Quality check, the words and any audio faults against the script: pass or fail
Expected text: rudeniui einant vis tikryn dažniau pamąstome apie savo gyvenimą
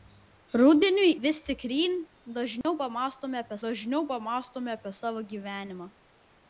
fail